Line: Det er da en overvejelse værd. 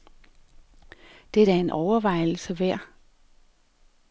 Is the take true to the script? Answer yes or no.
yes